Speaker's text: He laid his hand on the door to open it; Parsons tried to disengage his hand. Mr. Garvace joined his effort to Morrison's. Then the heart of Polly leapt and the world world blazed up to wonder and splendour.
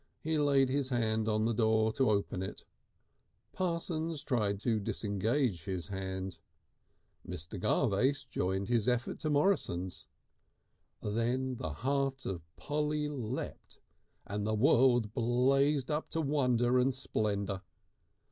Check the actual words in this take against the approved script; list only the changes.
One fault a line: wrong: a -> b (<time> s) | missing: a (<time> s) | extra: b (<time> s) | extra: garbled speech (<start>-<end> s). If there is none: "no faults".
missing: world (15.1 s)